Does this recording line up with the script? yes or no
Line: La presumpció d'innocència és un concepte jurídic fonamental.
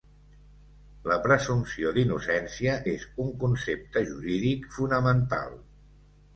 yes